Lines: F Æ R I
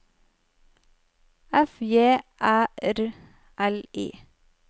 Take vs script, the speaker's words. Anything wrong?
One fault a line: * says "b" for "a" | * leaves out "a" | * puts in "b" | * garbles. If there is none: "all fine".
* puts in "J"
* puts in "L"